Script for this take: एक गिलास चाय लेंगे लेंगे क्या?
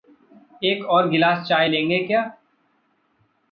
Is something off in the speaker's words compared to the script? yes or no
yes